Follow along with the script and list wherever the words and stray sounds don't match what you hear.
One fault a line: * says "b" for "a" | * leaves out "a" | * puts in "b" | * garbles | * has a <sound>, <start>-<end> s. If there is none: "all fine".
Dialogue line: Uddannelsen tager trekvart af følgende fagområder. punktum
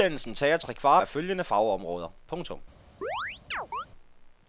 * has a chirp, 3.0-3.9 s